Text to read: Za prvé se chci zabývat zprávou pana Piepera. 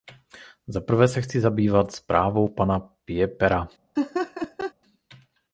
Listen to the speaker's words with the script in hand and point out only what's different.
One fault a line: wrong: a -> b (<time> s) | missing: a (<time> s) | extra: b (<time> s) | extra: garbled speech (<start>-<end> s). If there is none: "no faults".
no faults